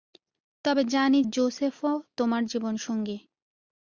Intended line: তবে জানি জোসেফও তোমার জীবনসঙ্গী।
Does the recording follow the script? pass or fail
pass